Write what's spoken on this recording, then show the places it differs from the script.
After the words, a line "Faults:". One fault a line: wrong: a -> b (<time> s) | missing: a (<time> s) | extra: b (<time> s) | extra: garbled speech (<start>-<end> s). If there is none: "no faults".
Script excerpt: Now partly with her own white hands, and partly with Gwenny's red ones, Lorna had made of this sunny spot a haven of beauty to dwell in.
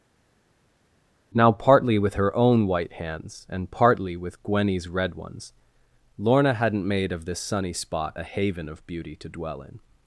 Now partly with her own white hands, and partly with Gwenny's red ones, Lorna hadn't made of this sunny spot a haven of beauty to dwell in.
Faults:
wrong: had -> hadn't (6.5 s)